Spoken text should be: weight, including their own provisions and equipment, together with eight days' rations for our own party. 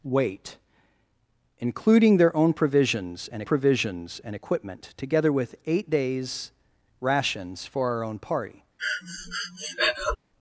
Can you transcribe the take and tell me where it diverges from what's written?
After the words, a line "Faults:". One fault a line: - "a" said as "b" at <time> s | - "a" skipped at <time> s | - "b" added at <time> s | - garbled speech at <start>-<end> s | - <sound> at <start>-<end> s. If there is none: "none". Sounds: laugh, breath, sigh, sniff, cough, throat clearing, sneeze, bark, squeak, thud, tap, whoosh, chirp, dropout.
weight, including their own provisions and provisions and equipment, together with eight days' rations for our own party.
Faults:
- "provisions and" added at 3.4 s
- breath at 8.8-10.2 s